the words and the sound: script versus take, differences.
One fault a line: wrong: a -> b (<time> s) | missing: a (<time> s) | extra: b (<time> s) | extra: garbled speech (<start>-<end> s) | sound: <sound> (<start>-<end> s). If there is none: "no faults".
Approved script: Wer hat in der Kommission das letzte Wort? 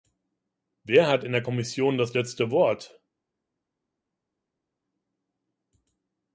no faults